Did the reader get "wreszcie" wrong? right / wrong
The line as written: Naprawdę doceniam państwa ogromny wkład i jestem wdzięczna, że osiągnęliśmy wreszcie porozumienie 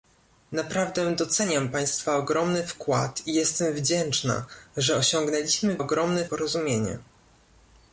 wrong